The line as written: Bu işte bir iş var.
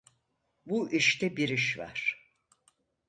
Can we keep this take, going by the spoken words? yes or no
yes